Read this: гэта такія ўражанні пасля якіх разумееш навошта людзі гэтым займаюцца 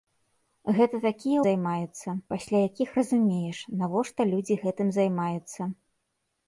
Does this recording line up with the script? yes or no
no